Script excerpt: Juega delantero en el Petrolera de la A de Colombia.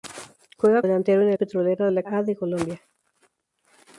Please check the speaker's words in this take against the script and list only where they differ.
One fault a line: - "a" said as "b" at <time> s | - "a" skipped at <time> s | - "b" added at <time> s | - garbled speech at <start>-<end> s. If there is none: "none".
none